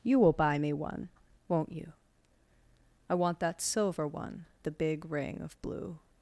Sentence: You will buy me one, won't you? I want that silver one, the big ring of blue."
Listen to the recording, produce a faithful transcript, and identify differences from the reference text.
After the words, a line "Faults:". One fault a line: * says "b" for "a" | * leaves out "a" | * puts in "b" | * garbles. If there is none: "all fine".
You will buy me one, won't you? I want that silver one, the big ring of blue."
Faults:
all fine